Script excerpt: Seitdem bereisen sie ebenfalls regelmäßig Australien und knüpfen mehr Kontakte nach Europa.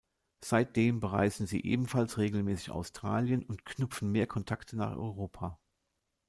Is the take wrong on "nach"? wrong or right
right